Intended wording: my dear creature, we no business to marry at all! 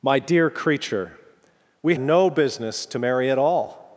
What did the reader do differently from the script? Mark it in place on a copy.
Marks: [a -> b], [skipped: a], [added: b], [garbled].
my dear creature, we no business to marry at all!